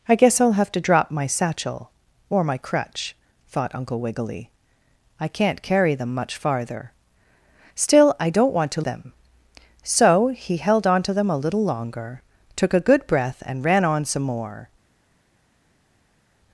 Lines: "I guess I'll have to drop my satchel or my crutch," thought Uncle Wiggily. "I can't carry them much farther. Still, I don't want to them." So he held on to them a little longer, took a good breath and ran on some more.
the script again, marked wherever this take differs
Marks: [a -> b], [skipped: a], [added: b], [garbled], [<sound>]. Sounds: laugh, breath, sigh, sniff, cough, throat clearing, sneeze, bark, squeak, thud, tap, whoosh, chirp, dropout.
"I guess I'll have to drop my satchel or my crutch," thought Uncle Wiggily. "I can't carry them much farther. Still, I don't want to them." So he held on to them a little longer, took a good breath and ran on some more.